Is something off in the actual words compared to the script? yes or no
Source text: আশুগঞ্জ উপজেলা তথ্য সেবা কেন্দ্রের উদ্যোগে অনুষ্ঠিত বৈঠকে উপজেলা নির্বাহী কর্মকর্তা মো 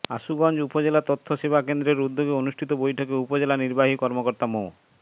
no